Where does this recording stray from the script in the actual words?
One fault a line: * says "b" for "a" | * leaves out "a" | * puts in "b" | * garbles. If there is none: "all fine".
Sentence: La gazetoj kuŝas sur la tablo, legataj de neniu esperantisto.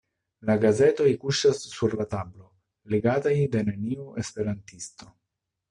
all fine